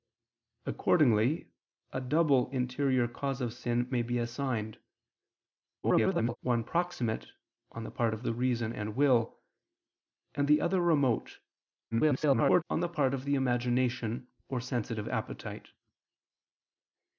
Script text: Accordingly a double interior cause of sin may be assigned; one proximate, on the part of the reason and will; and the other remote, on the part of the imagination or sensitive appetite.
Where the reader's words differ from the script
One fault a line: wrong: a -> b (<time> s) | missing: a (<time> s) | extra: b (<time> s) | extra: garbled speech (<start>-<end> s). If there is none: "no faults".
extra: garbled speech (5.8-6.4 s)
extra: garbled speech (11.9-12.6 s)